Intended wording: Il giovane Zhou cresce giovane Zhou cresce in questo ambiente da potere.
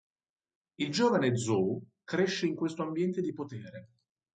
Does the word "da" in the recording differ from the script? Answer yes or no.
yes